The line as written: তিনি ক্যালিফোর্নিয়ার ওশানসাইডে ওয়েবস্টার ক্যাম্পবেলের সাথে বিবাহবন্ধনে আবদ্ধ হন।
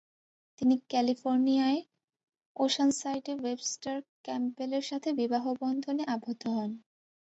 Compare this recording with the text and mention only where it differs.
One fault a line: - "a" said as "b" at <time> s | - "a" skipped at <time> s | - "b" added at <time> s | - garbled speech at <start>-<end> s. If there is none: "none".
none